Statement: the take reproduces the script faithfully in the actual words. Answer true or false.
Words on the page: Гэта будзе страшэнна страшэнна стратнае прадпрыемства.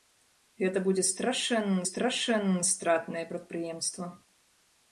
true